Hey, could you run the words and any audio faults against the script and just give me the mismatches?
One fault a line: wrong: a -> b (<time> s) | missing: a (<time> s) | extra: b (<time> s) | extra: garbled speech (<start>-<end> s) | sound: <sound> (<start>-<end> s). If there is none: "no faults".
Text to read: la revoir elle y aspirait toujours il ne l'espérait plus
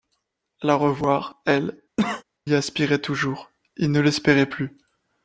sound: cough (2.0-2.2 s)